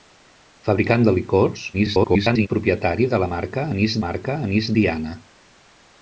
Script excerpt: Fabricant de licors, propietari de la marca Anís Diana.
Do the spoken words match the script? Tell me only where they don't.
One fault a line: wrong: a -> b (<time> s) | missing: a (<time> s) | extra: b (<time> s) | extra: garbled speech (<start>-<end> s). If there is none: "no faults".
extra: garbled speech (1.7-2.5 s)
extra: marca Anís (4.1 s)